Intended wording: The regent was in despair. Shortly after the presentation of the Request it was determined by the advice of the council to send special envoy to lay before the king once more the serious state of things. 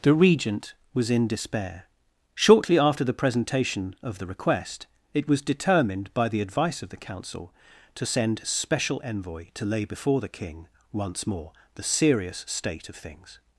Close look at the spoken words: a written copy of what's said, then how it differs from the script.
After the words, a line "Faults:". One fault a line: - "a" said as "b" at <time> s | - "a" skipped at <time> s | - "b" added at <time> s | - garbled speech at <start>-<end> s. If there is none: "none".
The regent was in despair. Shortly after the presentation of the Request it was determined by the advice of the council to send special envoy to lay before the king once more the serious state of things.
Faults:
none